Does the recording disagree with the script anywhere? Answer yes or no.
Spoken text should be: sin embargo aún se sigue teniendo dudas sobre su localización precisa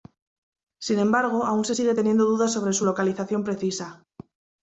no